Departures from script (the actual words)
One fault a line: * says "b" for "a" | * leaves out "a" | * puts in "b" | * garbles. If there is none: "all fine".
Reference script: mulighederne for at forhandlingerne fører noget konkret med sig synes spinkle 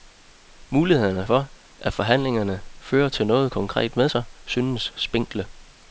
all fine